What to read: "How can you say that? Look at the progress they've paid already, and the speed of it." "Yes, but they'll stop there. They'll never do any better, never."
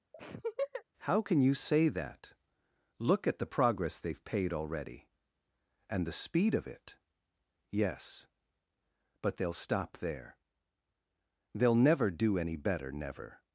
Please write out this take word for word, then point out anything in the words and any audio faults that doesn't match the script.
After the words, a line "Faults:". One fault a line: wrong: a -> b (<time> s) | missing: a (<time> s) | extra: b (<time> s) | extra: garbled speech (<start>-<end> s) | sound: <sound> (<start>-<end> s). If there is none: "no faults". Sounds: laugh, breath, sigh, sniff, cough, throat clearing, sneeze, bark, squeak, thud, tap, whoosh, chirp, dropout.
"How can you say that? Look at the progress they've paid already, and the speed of it." "Yes, but they'll stop there. They'll never do any better, never."
Faults:
sound: laugh (0.1-0.8 s)